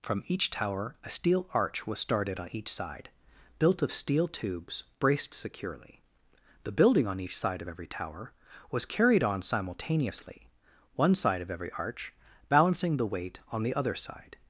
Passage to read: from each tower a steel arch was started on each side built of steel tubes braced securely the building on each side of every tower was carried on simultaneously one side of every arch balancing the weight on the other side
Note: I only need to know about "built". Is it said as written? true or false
true